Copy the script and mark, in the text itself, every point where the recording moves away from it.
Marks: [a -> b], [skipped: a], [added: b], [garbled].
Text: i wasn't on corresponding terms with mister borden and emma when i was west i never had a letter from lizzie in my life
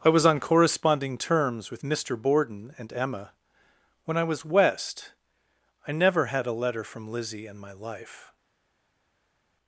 i [wasn't -> was] on corresponding terms with mister borden and emma when i was west i never had a letter from lizzie in my life